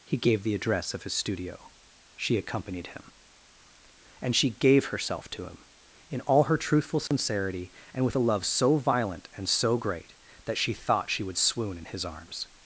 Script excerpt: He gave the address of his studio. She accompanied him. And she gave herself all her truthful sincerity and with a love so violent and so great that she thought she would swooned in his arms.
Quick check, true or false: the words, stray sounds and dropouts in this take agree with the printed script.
false